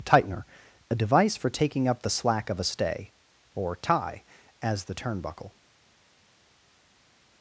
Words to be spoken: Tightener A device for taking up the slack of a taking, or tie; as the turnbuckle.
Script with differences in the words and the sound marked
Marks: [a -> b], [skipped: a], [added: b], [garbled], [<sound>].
Tightener A device for taking up the slack of a [taking, -> stay] or tie; as the turnbuckle.